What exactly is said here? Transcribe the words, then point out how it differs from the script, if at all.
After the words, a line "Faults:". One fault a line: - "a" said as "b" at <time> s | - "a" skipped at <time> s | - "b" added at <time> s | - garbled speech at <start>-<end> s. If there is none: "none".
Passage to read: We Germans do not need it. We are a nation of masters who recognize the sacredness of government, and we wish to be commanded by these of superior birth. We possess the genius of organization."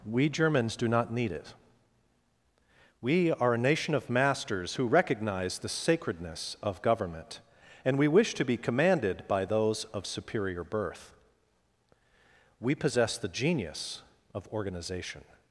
We Germans do not need it. We are a nation of masters who recognize the sacredness of government, and we wish to be commanded by those of superior birth. We possess the genius of organization."
Faults:
- "these" said as "those" at 9.4 s